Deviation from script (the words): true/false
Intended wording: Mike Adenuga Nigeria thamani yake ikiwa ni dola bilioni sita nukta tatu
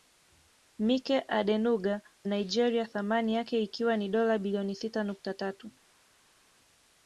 false